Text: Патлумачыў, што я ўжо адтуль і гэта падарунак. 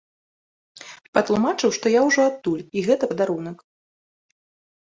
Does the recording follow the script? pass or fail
pass